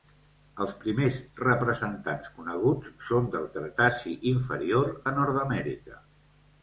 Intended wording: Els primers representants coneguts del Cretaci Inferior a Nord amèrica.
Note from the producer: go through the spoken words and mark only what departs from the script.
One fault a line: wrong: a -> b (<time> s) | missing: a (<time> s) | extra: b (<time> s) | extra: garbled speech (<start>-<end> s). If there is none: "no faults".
extra: són (3.1 s)